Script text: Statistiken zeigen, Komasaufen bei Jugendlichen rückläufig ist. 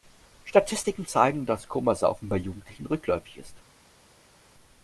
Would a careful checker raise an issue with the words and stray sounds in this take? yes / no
yes